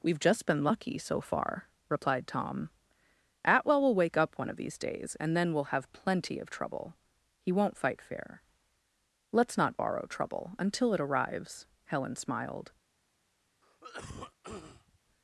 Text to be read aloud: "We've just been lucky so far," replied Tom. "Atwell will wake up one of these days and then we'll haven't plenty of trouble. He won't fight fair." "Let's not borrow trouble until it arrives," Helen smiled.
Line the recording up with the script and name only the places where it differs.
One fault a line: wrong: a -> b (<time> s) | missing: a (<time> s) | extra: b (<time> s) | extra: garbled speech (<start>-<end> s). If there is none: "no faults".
wrong: haven't -> have (5.7 s)